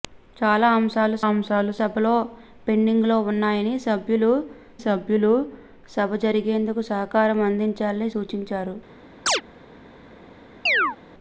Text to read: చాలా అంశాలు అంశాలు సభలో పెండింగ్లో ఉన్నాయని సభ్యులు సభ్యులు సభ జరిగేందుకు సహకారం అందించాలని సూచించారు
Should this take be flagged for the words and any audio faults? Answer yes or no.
yes